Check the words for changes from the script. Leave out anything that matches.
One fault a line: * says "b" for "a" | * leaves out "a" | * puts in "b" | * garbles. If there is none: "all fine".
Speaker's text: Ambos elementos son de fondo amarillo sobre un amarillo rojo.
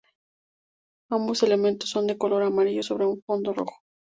* says "color" for "fondo"
* says "fondo" for "amarillo"